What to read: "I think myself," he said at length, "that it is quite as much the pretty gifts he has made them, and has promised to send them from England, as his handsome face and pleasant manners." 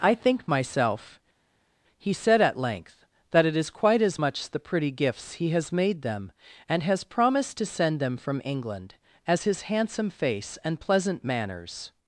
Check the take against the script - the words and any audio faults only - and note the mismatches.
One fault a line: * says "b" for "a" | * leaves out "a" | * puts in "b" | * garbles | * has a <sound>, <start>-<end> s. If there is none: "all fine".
all fine